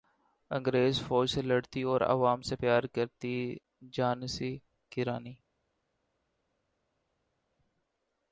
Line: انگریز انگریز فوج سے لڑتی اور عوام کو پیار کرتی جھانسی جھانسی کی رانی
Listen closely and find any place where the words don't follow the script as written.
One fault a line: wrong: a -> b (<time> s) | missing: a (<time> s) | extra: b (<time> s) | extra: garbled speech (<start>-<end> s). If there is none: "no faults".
missing: انگریز (1.0 s)
wrong: کو -> سے (2.4 s)
missing: جھانسی (4.6 s)